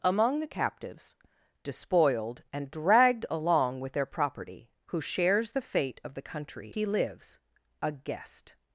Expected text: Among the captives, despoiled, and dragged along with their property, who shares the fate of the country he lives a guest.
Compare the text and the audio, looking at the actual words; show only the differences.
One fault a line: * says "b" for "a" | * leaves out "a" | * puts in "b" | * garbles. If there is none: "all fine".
all fine